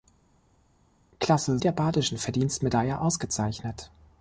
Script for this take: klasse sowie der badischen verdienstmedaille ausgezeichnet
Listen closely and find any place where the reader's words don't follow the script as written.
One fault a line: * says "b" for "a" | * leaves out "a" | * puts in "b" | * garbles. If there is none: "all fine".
* leaves out "sowie"